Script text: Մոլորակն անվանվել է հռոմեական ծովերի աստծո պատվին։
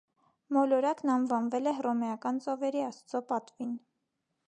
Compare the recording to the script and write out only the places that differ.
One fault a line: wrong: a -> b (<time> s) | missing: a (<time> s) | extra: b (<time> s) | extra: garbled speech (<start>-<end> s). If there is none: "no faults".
no faults